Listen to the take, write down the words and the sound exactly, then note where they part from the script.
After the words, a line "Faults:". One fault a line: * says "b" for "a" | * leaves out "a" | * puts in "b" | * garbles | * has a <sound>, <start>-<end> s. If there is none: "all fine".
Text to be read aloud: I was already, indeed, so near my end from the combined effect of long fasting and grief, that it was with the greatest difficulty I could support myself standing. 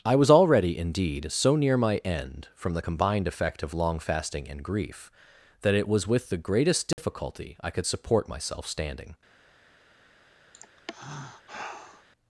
I was already, indeed, so near my end from the combined effect of long fasting and grief, that it was with the greatest difficulty I could support myself standing.
Faults:
* has a dropout, 6.9-7.0 s
* has a sigh, 10.5-12.1 s